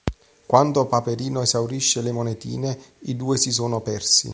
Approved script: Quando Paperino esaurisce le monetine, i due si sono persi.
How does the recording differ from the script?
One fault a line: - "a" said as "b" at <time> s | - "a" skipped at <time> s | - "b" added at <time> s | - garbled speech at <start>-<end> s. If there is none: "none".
none